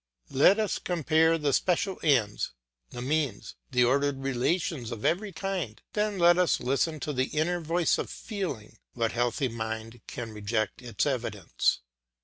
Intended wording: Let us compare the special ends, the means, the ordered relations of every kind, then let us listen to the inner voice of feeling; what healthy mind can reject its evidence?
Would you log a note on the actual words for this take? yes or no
no